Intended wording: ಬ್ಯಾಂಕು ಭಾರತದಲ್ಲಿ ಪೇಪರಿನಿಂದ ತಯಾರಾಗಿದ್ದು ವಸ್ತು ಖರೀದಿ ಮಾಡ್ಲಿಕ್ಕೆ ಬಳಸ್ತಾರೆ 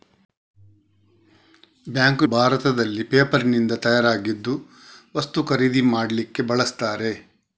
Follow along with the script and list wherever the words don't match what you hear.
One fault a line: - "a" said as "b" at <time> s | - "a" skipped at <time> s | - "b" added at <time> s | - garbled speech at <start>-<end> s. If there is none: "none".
none